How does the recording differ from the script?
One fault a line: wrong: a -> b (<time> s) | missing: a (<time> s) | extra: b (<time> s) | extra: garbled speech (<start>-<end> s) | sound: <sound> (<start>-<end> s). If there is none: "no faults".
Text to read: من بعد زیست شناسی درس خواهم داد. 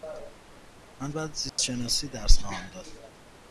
sound: dropout (1.5-1.6 s)